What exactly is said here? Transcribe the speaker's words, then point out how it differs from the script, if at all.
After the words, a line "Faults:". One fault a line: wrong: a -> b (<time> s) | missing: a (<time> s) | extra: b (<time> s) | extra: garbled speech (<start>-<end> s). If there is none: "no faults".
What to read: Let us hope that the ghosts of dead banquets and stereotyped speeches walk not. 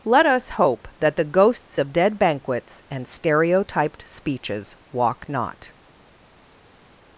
Let us hope that the ghosts of dead banquets and stereotyped speeches walk not.
Faults:
no faults